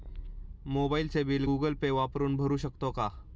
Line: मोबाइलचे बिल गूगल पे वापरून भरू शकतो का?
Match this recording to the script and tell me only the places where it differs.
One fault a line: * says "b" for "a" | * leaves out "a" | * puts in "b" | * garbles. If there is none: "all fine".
all fine